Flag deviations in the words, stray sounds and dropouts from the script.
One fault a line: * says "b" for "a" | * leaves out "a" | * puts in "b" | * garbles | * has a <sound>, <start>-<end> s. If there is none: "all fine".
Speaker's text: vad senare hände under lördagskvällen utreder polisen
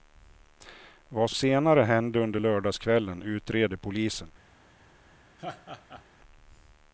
* has a laugh, 5.4-6.0 s